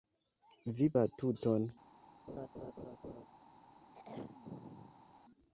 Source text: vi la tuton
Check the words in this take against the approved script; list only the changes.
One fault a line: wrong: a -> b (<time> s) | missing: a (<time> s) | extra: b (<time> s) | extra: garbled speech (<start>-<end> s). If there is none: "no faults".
no faults